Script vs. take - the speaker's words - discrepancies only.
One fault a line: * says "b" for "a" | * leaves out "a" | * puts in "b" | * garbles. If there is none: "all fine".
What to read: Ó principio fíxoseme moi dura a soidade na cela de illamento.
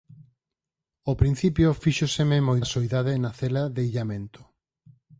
* leaves out "dura"